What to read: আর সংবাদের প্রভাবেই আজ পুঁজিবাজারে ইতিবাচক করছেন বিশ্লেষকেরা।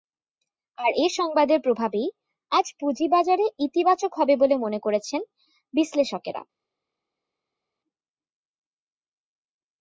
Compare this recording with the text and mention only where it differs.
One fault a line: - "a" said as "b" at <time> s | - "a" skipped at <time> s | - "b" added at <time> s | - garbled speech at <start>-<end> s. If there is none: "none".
- "এ" added at 0.9 s
- "হবে বলে মনে" added at 4.1 s